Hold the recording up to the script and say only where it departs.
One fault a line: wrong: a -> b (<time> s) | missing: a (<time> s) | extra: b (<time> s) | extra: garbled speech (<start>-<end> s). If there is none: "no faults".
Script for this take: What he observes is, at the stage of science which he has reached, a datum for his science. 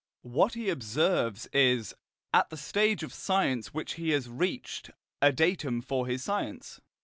no faults